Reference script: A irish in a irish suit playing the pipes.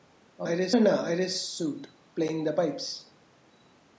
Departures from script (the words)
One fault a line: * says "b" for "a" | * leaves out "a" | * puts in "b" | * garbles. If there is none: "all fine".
all fine